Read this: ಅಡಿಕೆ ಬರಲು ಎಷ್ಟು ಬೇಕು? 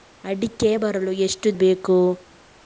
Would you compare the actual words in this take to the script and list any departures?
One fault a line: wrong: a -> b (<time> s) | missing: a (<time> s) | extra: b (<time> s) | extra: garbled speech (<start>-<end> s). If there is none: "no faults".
no faults